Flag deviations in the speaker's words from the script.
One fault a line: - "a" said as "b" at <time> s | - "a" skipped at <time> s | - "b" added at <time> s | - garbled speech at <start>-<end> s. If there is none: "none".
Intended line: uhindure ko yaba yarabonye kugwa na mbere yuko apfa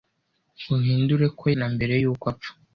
- "yaba yarabonye kugwa" skipped at 1.4 s